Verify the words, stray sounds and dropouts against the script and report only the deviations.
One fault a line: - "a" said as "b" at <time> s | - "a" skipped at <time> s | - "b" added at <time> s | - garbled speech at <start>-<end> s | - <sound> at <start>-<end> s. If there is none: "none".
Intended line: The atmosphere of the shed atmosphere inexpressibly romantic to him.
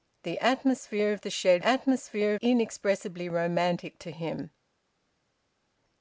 none